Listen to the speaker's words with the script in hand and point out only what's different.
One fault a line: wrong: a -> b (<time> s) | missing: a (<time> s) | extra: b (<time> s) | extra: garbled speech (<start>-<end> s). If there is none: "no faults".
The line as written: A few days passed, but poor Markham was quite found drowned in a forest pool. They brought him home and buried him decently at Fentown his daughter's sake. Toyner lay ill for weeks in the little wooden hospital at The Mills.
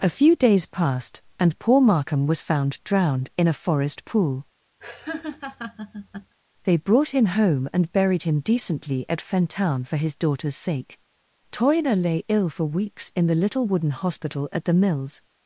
wrong: but -> and (1.4 s)
missing: quite (2.4 s)
extra: for (9.8 s)